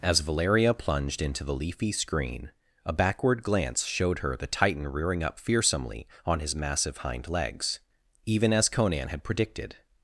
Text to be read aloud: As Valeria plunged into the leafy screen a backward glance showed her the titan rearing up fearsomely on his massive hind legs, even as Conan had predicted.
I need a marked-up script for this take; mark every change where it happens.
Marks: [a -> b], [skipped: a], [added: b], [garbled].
As Valeria plunged into the leafy screen a backward glance showed her the titan rearing up fearsomely on his massive hind legs, even as Conan had predicted.